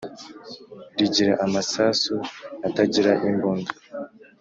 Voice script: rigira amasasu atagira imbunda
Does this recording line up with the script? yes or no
yes